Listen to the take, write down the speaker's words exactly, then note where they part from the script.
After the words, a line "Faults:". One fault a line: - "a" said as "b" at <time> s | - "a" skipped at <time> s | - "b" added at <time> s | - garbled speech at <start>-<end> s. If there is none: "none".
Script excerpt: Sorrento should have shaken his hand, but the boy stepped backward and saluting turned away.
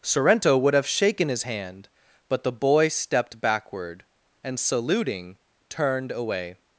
Sorrento would have shaken his hand, but the boy stepped backward and saluting turned away.
Faults:
- "should" said as "would" at 0.6 s